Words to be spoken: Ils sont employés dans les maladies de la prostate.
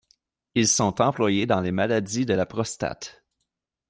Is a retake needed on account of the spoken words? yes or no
no